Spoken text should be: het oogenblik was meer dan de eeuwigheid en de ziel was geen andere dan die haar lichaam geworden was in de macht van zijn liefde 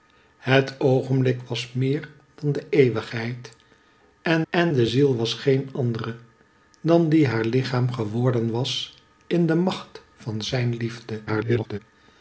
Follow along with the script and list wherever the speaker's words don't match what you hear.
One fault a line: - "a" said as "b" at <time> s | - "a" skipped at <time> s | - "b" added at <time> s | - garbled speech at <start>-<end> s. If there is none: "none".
- "en" added at 4.5 s
- garbled speech at 11.3-11.8 s